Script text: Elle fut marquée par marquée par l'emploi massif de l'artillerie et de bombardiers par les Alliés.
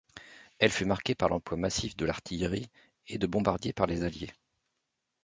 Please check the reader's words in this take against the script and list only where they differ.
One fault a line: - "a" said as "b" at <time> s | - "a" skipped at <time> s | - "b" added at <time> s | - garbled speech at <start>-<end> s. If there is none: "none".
- "marquée par" skipped at 1.3 s